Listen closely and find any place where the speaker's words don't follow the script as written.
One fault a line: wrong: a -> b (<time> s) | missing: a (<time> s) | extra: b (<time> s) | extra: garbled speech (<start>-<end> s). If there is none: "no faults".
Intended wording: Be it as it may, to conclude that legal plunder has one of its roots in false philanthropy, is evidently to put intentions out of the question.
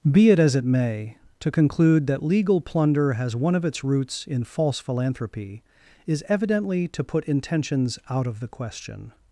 no faults